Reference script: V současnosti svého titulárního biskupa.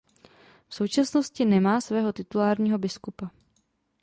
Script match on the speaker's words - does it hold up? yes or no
no